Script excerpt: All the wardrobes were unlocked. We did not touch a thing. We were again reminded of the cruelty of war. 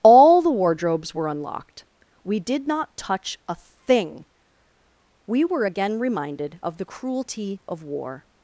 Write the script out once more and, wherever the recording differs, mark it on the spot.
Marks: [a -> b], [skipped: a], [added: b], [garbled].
All the wardrobes were unlocked. We did not touch a thing. We were again reminded of the cruelty of war.